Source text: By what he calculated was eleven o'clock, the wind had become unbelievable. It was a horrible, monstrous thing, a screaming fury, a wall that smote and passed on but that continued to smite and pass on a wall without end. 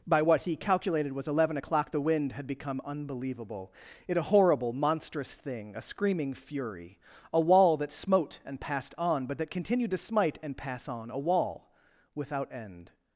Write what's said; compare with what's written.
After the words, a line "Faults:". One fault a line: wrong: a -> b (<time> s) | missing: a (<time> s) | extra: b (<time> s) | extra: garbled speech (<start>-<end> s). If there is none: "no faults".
By what he calculated was eleven o'clock, the wind had become unbelievable. It a horrible, monstrous thing, a screaming fury, a wall that smote and passed on but that continued to smite and pass on a wall without end.
Faults:
missing: was (4.2 s)